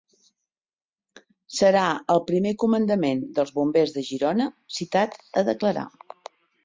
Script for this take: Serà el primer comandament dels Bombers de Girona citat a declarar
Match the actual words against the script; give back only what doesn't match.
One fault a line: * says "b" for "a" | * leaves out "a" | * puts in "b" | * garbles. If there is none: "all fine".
all fine